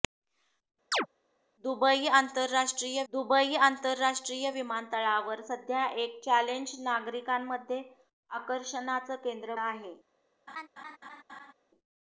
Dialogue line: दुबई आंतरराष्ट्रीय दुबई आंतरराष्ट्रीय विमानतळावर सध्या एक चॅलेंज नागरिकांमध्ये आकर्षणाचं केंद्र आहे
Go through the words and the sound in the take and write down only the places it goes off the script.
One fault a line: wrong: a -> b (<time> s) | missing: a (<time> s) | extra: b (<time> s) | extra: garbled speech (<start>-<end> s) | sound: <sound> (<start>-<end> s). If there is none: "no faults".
sound: chirp (0.9-1.1 s)
sound: laugh (10.5-11.5 s)